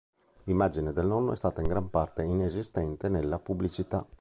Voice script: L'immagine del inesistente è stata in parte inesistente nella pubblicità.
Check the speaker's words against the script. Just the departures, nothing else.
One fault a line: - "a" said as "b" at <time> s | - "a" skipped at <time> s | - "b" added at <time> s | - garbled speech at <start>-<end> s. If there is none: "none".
- "inesistente" said as "nonno" at 1.1 s
- "gran" added at 1.7 s